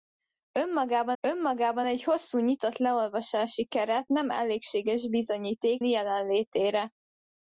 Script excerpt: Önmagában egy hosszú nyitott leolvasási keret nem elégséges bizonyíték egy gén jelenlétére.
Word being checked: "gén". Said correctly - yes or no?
no